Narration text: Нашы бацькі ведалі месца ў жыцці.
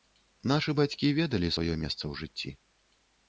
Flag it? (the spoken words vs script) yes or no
yes